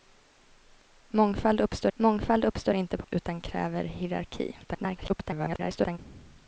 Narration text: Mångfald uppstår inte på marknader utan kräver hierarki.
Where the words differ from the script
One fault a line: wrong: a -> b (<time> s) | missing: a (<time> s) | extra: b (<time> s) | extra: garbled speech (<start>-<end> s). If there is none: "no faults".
extra: mångfald uppstår (1.9 s)
missing: marknader (3.1 s)
extra: garbled speech (4.6-6.0 s)